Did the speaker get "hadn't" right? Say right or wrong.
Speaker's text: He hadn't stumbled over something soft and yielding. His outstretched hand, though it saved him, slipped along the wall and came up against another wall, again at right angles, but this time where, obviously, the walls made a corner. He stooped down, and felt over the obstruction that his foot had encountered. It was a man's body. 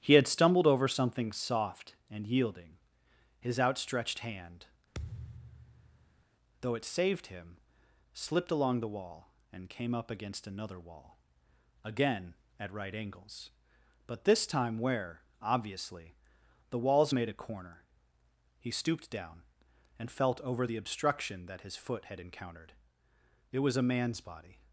wrong